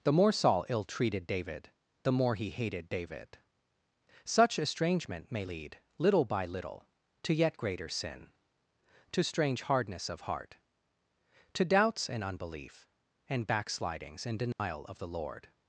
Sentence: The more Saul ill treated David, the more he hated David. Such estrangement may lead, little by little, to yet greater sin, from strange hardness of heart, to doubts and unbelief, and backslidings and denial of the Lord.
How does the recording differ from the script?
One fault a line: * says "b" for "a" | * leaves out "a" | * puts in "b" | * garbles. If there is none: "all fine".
* says "to" for "from"